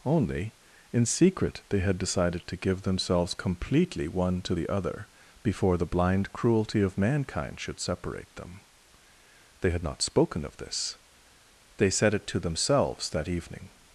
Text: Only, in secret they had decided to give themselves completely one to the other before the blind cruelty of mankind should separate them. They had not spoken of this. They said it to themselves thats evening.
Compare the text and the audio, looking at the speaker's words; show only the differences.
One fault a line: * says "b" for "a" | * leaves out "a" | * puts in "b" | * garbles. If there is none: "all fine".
* says "that" for "thats"